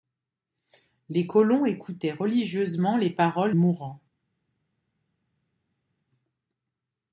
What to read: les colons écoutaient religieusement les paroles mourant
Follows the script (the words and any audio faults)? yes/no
yes